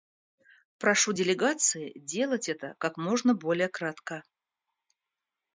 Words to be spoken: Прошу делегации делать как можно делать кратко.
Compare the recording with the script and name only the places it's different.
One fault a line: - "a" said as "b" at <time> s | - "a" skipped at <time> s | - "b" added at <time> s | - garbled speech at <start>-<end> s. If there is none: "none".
- "это" added at 2.5 s
- "делать" said as "более" at 3.3 s